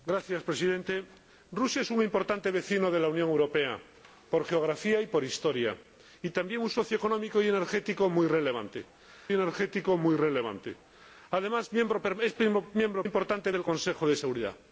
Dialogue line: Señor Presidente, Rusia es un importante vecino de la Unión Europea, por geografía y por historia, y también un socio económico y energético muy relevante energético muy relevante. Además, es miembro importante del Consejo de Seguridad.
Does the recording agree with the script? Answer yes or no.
yes